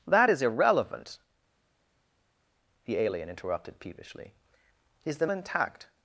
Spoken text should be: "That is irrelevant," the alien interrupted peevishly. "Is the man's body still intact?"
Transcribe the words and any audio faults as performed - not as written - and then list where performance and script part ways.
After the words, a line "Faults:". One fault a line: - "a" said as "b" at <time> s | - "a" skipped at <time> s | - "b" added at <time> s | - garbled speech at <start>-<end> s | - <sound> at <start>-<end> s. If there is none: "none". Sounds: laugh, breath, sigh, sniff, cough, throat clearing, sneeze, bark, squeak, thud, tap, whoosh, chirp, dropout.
"That is irrelevant," the alien interrupted peevishly. "Is the intact?"
Faults:
- "man's body still" skipped at 5.3 s